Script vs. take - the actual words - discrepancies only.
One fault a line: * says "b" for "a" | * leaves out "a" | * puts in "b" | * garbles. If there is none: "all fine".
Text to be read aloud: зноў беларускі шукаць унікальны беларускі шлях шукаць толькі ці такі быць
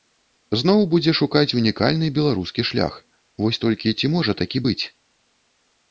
* says "будзе" for "беларускі"
* says "вось" for "шукаць"
* puts in "можа"